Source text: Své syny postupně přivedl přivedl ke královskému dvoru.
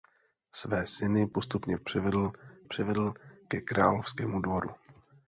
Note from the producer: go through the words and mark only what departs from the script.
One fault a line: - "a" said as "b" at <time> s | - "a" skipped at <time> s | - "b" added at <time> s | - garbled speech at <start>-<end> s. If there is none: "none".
none